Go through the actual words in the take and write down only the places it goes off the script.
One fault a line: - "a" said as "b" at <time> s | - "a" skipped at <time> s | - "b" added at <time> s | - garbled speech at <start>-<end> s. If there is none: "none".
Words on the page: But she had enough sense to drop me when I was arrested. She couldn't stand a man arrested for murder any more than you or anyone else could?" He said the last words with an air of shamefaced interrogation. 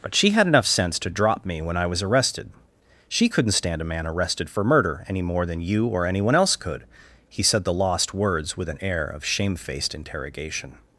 - "last" said as "lost" at 7.7 s